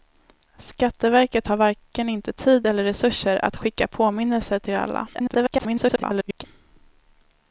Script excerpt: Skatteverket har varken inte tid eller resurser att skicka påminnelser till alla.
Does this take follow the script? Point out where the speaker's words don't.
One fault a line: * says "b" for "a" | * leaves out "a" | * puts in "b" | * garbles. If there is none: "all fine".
* garbles